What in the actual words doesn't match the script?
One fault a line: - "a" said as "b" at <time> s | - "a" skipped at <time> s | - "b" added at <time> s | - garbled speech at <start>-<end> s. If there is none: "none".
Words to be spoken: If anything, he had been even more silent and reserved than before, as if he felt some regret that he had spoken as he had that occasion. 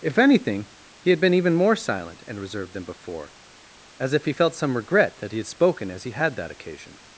none